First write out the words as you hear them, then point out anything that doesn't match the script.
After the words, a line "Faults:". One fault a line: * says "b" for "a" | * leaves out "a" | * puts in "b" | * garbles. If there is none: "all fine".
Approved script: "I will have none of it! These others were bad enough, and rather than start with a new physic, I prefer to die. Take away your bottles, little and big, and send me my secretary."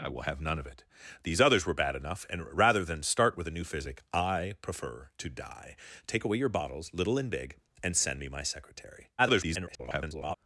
"I will have none of it! These others were bad enough, and rather than start with a new physic, I prefer to die. Take away your bottles, little and big, and send me my secretary." [garbled]
Faults:
* garbles